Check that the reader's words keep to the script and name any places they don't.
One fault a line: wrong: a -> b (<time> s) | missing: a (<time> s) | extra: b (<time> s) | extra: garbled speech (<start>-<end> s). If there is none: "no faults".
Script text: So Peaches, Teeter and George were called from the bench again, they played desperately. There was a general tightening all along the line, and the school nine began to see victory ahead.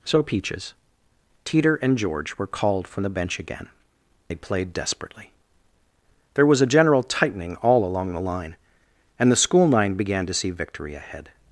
no faults